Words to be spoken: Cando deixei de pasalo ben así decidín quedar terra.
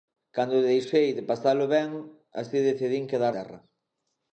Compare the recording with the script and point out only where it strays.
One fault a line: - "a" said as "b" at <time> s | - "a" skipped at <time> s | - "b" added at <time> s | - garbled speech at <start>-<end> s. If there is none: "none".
none